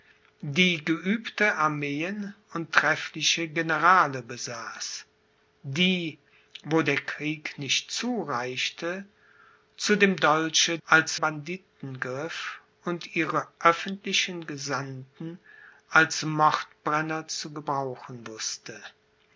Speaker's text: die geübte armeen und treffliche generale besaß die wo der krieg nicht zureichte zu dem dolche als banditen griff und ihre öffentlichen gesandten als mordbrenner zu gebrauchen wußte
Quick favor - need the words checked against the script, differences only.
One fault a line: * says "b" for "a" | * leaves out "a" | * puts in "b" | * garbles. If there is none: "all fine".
all fine